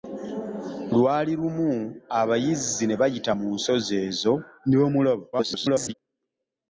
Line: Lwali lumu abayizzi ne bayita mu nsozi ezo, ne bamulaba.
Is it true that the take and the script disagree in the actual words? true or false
true